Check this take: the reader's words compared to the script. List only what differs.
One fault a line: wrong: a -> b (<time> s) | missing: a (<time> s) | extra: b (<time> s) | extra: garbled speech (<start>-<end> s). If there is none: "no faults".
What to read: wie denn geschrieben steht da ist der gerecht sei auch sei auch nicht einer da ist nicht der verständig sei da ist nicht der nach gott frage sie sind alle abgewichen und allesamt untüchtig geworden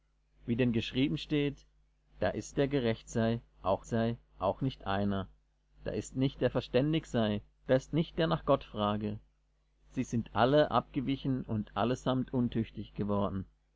no faults